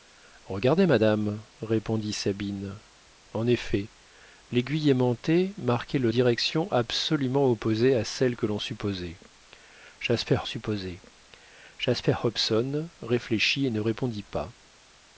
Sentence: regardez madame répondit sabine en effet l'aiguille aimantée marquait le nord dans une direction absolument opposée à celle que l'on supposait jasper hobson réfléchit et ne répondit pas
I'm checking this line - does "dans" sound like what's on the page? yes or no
no